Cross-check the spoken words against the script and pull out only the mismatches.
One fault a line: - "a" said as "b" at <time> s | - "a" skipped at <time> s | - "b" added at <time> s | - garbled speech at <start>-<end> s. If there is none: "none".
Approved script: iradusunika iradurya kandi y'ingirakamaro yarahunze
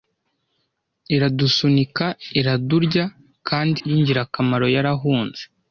none